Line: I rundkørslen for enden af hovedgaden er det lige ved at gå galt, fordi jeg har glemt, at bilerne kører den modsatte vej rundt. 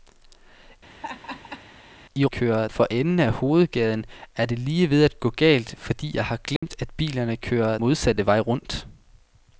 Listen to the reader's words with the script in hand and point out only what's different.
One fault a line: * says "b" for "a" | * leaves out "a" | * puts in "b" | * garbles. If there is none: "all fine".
* says "kører" for "rundkørslen"
* leaves out "den"